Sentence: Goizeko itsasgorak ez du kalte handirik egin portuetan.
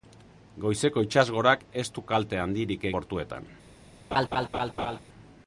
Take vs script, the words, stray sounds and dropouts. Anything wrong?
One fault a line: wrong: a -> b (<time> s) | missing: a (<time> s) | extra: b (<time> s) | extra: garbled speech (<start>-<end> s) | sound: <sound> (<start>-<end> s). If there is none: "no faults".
missing: egin (2.9 s)
sound: laugh (4.1-5.0 s)